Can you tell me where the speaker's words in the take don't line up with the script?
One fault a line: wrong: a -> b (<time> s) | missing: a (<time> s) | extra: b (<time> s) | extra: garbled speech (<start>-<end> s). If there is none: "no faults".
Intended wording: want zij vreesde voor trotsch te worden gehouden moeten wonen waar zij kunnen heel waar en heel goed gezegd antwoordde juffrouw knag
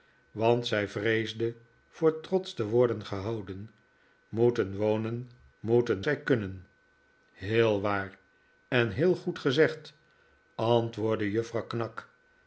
wrong: waar -> moeten (5.6 s)